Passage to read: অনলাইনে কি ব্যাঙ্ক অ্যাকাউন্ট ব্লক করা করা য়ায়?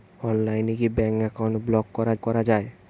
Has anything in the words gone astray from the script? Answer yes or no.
no